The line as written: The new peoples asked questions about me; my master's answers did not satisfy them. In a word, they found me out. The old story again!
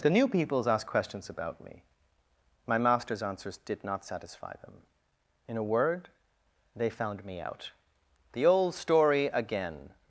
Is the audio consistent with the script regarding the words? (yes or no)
yes